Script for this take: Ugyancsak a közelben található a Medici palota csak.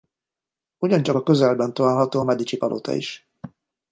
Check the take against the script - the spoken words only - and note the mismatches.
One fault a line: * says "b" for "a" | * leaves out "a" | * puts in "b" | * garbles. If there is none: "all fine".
* says "is" for "csak"